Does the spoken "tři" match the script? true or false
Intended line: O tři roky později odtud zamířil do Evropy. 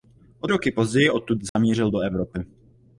false